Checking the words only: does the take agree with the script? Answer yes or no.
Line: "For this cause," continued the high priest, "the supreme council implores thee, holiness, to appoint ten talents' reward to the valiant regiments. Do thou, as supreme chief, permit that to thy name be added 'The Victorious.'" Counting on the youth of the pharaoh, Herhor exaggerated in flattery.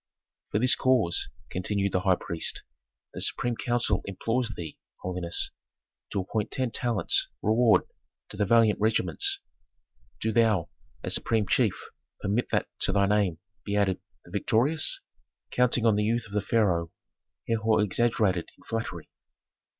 yes